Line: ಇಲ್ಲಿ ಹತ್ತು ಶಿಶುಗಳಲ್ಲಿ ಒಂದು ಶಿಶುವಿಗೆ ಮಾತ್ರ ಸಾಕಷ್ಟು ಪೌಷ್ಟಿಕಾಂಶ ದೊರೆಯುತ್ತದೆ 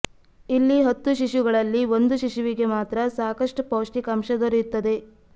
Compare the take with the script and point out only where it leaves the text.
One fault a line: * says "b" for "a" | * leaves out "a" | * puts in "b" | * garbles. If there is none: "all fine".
all fine